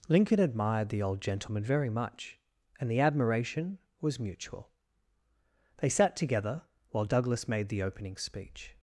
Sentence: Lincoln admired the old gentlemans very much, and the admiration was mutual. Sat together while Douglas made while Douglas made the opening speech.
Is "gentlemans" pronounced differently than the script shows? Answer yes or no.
yes